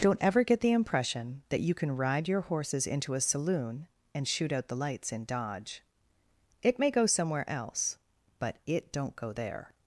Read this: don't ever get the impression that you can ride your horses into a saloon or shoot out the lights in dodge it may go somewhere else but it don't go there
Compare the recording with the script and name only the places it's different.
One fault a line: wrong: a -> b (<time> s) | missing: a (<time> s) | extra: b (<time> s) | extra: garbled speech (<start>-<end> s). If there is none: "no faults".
wrong: or -> and (4.1 s)